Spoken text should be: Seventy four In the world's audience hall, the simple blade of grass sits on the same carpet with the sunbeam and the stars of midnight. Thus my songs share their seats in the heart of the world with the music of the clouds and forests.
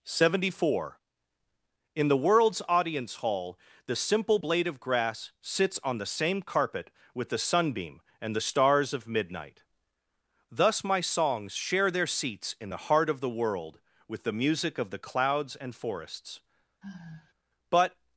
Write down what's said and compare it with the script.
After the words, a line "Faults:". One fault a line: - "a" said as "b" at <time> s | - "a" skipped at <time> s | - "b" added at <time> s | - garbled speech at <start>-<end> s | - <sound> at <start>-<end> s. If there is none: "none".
Seventy four In the world's audience hall, the simple blade of grass sits on the same carpet with the sunbeam and the stars of midnight. Thus my songs share their seats in the heart of the world with the music of the clouds and forests. But
Faults:
- sigh at 16.8-17.3 s
- "But" added at 17.7 s